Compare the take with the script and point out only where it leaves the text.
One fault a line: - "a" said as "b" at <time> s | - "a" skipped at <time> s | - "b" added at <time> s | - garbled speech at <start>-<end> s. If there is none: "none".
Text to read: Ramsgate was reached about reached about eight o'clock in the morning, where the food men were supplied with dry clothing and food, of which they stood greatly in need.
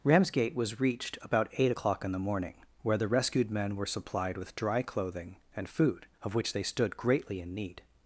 - "reached about" skipped at 1.5 s
- "food" said as "rescued" at 3.1 s